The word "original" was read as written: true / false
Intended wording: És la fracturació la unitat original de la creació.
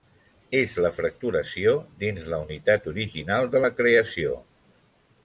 true